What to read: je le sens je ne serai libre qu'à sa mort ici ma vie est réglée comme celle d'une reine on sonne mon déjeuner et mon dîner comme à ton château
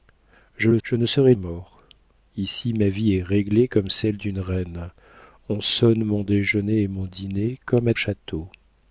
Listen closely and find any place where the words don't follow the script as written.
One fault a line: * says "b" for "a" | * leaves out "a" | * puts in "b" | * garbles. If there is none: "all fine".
* leaves out "sens"
* leaves out "libre qu'à sa"
* leaves out "ton"